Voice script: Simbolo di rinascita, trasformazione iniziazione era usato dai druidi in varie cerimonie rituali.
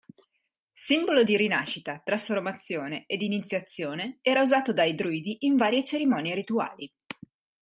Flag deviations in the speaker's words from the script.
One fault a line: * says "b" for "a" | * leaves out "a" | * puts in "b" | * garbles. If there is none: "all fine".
* puts in "ed"